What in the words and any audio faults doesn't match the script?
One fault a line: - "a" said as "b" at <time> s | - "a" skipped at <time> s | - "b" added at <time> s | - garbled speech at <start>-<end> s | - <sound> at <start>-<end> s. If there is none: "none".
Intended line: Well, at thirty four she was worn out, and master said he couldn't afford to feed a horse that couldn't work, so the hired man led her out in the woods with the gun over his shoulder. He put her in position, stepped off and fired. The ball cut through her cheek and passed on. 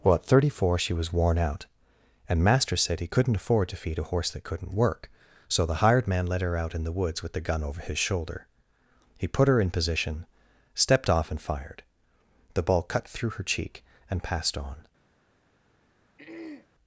- throat clearing at 16.2-16.7 s